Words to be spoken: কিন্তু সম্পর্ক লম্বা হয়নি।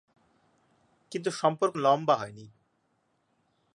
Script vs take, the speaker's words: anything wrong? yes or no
no